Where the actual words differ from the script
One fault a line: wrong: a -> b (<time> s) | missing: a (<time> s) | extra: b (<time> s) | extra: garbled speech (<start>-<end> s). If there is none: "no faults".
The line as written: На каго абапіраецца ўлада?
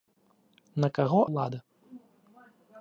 missing: абапіраецца (1.2 s)